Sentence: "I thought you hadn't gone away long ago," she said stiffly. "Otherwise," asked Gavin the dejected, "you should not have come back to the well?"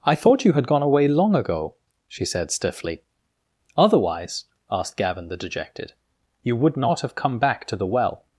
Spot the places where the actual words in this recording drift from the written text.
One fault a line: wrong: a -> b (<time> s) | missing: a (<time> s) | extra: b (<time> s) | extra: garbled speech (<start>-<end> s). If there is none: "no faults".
wrong: hadn't -> had (0.5 s)
wrong: should -> would (6.5 s)